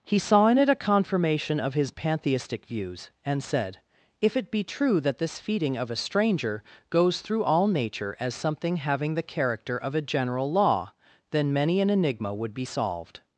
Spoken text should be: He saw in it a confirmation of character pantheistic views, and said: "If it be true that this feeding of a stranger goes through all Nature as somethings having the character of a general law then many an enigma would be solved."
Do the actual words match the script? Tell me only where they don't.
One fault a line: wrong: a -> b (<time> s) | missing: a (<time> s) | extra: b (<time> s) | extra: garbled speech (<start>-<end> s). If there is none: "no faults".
wrong: character -> his (1.8 s)
wrong: somethings -> something (8.3 s)